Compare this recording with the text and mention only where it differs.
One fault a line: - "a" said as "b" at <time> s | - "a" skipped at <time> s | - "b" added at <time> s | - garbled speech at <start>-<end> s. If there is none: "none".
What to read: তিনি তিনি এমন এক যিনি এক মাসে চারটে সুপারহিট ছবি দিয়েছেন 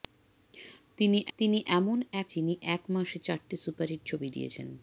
none